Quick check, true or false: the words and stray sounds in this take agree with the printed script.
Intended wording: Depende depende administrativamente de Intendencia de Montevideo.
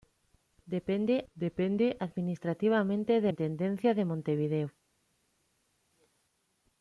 true